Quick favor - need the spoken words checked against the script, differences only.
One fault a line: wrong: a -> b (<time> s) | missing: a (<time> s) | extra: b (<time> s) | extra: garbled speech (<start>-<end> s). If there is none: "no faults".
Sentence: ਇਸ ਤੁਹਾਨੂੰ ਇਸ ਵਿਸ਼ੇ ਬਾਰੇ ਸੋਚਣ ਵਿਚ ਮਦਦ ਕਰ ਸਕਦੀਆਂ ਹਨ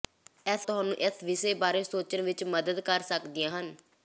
no faults